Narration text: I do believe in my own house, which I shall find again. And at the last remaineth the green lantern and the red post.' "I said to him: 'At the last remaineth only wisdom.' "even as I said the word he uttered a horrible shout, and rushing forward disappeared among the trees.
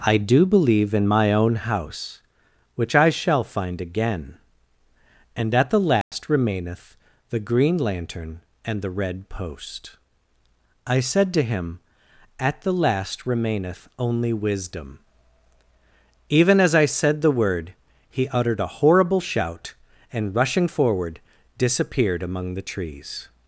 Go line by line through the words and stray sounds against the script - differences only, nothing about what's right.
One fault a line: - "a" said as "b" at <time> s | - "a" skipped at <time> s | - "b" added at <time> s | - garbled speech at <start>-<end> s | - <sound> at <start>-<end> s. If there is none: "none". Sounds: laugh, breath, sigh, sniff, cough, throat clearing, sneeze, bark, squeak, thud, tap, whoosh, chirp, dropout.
- dropout at 6.0-6.1 s